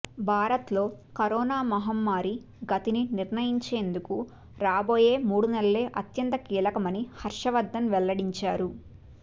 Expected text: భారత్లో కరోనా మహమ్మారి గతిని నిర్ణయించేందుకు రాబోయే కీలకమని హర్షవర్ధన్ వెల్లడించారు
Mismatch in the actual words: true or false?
true